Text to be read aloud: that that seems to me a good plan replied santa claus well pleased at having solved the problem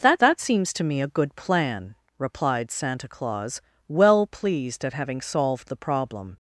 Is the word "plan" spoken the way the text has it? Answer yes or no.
yes